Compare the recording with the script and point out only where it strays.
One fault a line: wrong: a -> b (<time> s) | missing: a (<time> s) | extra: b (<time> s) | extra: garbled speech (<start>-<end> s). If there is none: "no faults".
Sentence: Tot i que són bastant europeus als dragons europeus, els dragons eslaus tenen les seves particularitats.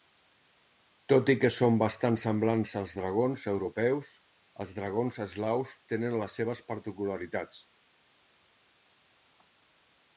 wrong: europeus -> semblants (2.2 s)